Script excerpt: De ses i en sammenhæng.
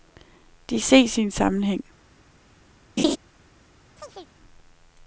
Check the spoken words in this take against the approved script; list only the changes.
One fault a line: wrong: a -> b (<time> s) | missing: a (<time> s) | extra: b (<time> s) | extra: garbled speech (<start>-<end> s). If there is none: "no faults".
no faults